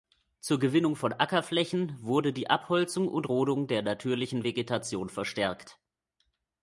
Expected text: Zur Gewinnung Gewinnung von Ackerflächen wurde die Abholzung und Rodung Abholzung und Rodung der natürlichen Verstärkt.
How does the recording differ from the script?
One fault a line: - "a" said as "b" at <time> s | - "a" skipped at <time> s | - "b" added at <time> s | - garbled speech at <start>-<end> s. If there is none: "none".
- "Gewinnung" skipped at 0.9 s
- "Abholzung und Rodung" skipped at 3.7 s
- "Vegetation" added at 4.4 s